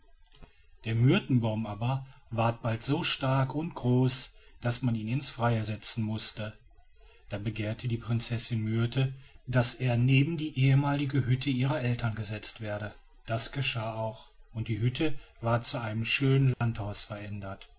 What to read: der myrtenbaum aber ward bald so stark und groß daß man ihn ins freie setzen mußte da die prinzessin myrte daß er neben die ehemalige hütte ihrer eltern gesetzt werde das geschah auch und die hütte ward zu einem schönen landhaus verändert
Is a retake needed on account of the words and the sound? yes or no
yes